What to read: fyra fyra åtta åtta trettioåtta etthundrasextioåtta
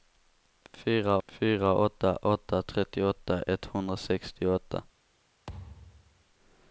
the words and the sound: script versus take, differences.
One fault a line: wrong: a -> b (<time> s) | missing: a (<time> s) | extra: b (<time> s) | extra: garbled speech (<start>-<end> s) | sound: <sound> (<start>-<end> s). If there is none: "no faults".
sound: thud (5.5-6.2 s)